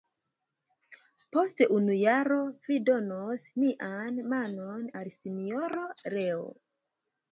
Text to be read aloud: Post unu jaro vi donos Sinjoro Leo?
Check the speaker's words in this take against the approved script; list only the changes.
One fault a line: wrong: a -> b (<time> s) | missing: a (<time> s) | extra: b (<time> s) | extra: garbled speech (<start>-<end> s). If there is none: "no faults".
extra: mian manon al (3.6 s)